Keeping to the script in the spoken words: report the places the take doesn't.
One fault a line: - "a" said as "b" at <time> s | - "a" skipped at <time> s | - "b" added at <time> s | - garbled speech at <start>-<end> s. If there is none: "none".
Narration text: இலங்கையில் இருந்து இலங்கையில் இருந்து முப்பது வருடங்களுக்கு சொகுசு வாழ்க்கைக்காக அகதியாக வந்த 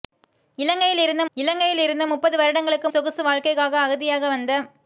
none